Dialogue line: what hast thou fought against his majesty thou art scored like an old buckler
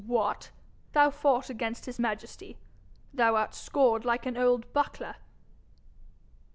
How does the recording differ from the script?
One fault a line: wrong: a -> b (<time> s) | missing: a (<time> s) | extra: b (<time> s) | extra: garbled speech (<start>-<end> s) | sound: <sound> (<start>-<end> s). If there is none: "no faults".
missing: hast (0.5 s)